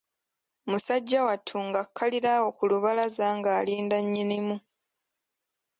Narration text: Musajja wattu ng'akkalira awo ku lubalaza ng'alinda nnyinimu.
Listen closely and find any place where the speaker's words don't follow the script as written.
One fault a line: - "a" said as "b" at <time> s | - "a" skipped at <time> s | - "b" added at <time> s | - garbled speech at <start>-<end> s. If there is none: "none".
none